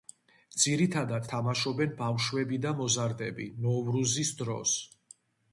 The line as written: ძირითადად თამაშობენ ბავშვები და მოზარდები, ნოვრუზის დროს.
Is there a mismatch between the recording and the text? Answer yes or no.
no